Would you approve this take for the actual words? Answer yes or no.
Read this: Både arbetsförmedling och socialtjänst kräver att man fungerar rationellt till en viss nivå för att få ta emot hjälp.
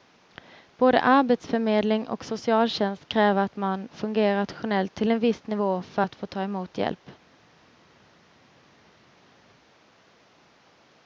yes